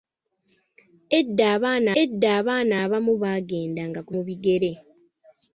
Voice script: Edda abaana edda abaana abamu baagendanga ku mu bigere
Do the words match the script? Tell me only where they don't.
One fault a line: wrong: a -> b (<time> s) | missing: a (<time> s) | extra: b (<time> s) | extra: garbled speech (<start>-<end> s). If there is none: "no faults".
no faults